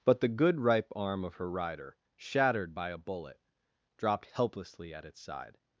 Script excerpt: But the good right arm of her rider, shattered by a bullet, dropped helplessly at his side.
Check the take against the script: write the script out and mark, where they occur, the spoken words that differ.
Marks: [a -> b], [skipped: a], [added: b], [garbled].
But the good [right -> ripe] arm of her rider, shattered by a bullet, dropped helplessly at [his -> its] side.